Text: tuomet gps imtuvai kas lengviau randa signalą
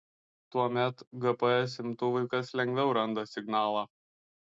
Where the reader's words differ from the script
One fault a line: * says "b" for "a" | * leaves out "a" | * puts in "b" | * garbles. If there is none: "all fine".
all fine